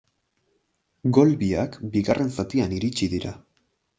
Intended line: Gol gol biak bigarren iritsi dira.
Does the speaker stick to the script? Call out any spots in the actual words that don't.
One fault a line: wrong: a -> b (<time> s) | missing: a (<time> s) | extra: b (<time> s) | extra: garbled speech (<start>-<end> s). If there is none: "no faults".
missing: gol (1.3 s)
extra: zatian (2.4 s)